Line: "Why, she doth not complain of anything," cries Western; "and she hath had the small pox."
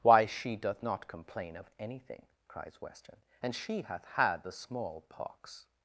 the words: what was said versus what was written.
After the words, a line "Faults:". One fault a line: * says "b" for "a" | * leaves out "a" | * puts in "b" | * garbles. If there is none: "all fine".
"Why, she doth not complain of anything," cries Western; "and she hath had the small pox."
Faults:
all fine